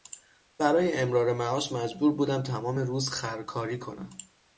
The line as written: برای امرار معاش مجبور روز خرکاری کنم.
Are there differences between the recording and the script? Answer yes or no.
yes